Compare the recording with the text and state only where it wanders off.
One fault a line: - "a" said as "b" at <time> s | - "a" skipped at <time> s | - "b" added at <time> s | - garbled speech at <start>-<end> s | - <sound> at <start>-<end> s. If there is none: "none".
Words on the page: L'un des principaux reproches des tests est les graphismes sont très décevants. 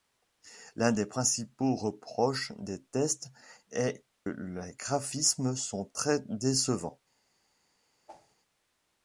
- whoosh at 8.1-8.4 s